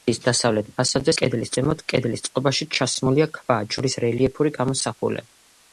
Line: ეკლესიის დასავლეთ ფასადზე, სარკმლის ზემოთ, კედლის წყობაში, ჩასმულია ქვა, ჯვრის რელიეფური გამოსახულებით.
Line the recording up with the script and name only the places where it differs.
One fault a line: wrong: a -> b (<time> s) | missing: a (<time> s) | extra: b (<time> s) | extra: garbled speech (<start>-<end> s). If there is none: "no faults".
wrong: სარკმლის -> კედლის (1.2 s)